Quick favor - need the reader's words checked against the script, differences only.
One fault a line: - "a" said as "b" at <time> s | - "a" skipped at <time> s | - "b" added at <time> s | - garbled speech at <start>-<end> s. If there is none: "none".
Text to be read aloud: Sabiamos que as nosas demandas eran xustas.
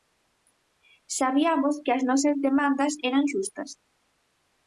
none